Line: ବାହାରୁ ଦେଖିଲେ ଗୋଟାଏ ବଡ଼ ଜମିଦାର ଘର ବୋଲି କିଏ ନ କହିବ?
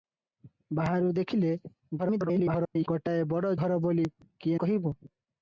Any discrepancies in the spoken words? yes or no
yes